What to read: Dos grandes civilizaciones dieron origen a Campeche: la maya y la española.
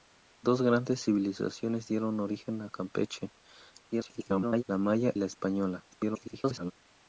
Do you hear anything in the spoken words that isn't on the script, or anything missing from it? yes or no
yes